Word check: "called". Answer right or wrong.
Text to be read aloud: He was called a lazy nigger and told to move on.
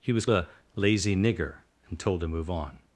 wrong